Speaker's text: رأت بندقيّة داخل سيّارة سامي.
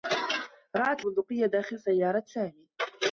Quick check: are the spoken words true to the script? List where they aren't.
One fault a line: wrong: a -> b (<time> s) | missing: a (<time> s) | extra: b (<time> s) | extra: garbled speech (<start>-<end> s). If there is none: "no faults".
no faults